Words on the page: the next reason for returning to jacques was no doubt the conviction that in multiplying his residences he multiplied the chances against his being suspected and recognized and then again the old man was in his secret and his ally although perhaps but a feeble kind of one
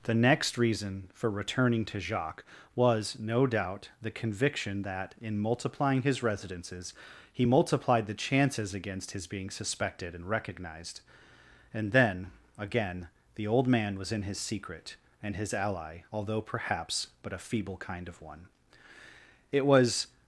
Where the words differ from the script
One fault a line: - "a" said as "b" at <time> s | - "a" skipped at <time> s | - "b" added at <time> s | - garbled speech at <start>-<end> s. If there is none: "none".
- "it was" added at 19.5 s